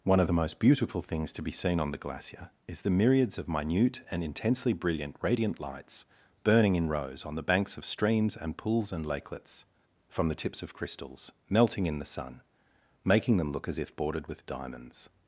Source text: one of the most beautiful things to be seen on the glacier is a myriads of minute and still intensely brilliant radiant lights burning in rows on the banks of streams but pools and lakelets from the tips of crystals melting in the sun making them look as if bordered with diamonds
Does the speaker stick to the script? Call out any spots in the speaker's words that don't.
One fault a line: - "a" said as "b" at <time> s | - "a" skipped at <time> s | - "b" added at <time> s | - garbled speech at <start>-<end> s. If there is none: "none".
- "a" said as "the" at 2.8 s
- "still" skipped at 4.2 s
- "but" said as "and" at 8.4 s